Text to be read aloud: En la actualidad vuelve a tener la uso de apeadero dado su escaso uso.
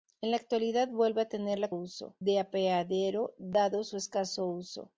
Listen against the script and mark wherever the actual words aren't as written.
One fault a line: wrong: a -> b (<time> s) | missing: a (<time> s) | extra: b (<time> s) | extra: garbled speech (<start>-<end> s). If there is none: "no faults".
no faults